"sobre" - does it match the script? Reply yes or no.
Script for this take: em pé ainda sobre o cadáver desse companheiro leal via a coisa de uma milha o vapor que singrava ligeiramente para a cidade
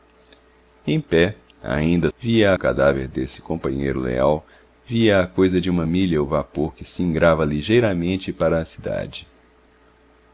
no